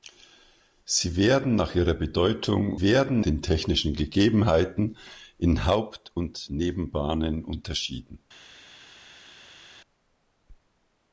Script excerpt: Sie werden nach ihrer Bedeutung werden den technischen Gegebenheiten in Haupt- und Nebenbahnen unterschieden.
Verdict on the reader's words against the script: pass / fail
pass